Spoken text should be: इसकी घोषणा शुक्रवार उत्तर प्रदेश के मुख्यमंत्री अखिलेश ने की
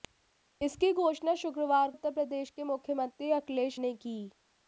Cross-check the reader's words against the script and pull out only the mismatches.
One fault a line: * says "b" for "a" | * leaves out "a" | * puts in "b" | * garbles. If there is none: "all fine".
all fine